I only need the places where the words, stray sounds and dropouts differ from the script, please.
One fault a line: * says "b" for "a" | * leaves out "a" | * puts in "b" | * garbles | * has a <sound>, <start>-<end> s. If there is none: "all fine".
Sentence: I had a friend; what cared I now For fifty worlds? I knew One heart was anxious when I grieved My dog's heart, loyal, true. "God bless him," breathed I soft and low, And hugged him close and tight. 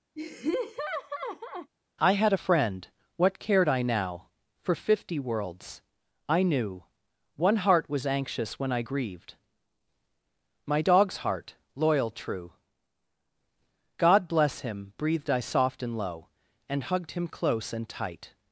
* has a laugh, 0.2-1.7 s